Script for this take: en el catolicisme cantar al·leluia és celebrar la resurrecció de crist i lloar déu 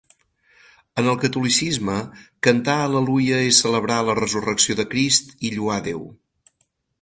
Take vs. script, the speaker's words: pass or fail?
pass